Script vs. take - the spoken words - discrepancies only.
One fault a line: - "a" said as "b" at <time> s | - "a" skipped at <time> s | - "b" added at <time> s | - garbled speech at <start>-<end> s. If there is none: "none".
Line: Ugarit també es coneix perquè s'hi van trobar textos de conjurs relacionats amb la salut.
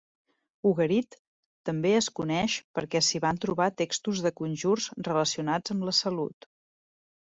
none